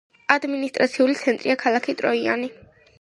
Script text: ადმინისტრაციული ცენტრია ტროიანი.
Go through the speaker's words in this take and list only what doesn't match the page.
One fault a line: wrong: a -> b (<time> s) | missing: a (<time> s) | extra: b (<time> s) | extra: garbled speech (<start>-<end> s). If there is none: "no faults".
extra: ქალაქი (1.7 s)